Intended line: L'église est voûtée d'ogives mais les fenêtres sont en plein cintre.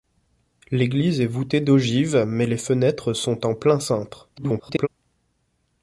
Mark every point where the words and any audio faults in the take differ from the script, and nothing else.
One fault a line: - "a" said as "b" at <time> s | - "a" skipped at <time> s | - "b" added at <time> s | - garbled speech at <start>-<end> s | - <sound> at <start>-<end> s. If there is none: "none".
- garbled speech at 4.4-4.9 s